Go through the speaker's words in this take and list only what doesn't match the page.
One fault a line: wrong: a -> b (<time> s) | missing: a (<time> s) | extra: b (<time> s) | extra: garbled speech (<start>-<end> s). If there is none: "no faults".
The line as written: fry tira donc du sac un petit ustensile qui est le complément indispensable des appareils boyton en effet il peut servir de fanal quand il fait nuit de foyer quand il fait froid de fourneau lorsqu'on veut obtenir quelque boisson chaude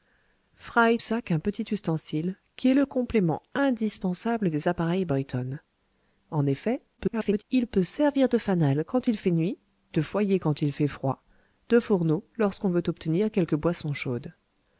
missing: tira donc du (1.0 s)
extra: garbled speech (7.0-7.4 s)